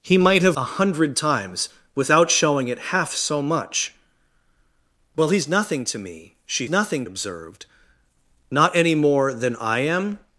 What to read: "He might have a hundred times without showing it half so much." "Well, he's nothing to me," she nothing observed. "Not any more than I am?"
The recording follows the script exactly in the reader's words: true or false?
true